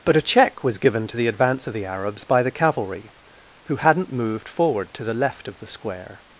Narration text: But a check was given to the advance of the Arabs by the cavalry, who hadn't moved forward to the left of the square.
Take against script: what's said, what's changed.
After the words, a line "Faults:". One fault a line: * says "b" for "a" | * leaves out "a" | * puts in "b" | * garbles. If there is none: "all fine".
But a check was given to the advance of the Arabs by the cavalry, who hadn't moved forward to the left of the square.
Faults:
all fine